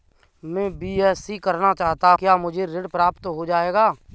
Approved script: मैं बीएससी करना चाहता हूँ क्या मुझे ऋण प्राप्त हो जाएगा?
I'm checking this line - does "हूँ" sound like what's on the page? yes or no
no